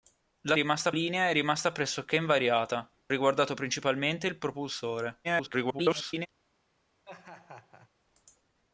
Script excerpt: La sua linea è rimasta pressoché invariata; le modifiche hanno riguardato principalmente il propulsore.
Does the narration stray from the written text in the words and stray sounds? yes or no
yes